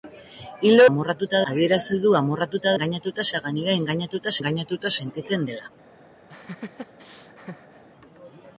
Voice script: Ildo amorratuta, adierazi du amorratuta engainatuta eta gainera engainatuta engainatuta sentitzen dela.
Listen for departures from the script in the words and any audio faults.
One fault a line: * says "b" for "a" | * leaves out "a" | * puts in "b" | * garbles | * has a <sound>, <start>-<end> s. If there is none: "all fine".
* has a laugh, 6.3-7.8 s